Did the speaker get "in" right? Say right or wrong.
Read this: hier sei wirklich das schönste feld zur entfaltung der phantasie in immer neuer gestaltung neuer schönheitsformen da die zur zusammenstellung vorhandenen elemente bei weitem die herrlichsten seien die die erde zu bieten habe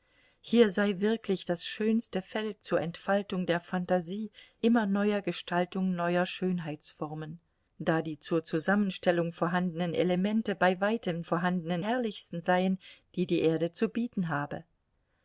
wrong